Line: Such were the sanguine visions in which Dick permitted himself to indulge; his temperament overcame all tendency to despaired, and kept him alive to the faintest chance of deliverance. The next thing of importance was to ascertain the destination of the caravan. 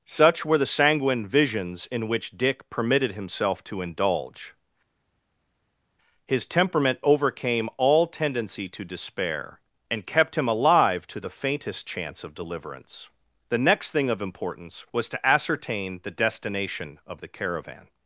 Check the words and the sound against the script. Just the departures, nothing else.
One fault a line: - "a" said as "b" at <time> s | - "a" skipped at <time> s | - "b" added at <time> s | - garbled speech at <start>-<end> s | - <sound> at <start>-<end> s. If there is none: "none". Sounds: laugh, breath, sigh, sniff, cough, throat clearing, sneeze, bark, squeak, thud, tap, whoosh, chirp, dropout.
- "despaired" said as "despair" at 8.8 s